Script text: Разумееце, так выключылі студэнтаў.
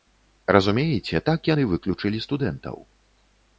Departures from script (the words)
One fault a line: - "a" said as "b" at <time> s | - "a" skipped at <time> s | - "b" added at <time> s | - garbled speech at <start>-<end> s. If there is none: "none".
- "яны" added at 1.5 s